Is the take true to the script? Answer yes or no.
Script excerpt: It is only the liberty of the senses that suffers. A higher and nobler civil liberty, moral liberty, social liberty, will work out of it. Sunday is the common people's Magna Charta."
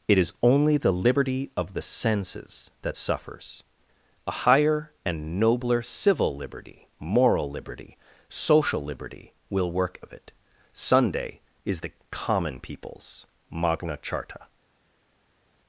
no